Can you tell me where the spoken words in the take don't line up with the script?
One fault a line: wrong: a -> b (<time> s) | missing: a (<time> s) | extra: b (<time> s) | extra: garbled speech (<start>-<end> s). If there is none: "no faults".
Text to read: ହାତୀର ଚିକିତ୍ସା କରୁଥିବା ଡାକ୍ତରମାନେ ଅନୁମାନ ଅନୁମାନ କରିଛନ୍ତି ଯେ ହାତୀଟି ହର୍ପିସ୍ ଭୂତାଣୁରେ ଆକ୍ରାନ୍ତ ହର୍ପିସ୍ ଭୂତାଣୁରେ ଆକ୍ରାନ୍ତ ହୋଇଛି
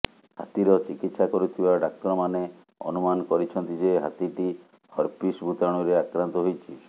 missing: ଅନୁମାନ (3.3 s)
missing: ହର୍ପିସ୍ ଭୂତାଣୁରେ ଆକ୍ରାନ୍ତ (6.5 s)